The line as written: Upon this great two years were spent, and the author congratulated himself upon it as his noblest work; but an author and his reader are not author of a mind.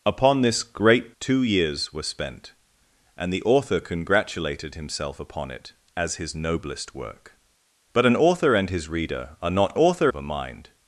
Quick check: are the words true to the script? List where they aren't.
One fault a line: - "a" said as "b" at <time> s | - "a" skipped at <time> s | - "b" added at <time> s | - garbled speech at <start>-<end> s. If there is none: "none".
none